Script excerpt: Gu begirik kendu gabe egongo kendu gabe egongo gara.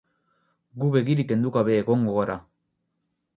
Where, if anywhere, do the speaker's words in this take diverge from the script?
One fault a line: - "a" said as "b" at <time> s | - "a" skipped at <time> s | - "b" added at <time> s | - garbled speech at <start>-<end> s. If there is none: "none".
- "kendu gabe egongo" skipped at 2.1 s